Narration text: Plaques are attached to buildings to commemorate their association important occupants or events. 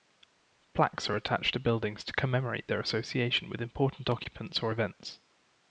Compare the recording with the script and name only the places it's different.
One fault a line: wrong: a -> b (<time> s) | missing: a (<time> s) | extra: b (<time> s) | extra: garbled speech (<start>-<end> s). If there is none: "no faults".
extra: with (3.5 s)